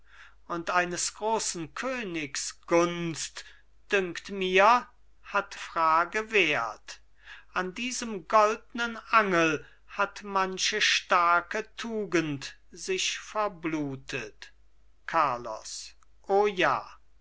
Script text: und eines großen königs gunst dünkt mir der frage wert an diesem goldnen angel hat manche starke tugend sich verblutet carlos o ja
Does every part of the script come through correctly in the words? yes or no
no